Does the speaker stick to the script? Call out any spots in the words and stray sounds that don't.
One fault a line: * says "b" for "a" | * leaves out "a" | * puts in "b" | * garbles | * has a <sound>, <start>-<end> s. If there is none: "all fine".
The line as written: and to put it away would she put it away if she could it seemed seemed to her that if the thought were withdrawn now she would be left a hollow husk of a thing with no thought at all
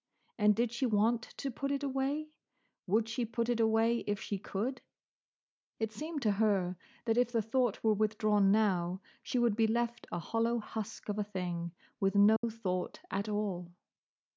* puts in "did she want"
* leaves out "seemed"
* has a dropout, 12.4-12.4 s